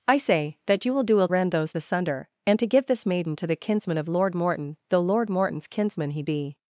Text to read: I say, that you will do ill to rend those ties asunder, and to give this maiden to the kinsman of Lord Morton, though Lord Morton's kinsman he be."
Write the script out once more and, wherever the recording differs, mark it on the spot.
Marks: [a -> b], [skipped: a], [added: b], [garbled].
I say, that you will do ill [skipped: to] rend those [skipped: ties] asunder, and to give this maiden to the kinsman of Lord Morton, though Lord Morton's kinsman he be."